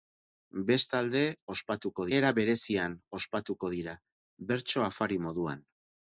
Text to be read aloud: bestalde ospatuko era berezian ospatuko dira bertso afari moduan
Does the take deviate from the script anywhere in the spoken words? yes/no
no